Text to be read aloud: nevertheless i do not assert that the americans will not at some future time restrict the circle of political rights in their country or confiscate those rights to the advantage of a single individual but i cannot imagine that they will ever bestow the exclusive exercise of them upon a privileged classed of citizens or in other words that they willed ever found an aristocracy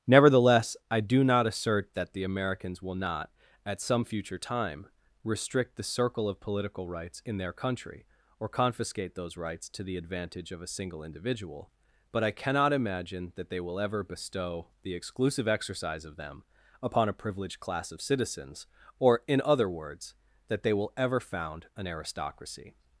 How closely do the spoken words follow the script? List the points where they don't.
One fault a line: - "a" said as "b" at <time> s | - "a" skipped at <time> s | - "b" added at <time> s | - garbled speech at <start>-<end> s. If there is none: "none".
- "classed" said as "class" at 17.6 s
- "willed" said as "will" at 20.7 s